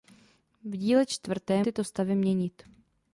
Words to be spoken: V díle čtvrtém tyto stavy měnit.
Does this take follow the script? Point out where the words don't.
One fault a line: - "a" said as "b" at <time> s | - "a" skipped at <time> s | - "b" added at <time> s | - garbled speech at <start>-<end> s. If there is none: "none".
none